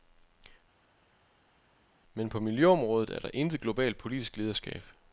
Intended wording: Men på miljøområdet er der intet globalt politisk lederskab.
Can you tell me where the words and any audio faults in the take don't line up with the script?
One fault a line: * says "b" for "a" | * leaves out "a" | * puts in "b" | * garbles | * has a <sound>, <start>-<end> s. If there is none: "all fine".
all fine